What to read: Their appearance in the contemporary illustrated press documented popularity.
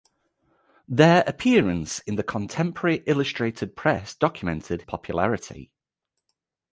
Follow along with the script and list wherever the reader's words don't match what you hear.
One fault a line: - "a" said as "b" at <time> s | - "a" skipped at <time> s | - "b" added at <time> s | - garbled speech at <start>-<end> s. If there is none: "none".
none